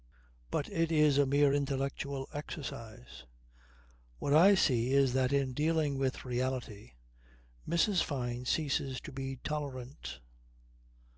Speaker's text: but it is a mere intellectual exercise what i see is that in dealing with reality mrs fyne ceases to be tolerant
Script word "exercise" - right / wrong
right